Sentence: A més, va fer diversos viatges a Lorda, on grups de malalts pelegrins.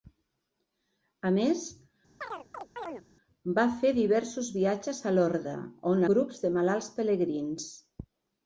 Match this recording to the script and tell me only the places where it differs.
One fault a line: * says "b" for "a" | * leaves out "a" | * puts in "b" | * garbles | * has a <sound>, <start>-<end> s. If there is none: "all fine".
* has a chirp, 2.2-3.0 s